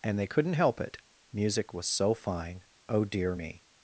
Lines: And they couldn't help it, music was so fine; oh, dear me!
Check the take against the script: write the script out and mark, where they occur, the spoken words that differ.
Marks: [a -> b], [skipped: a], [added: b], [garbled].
And they couldn't help it, music was so fine; oh, dear me!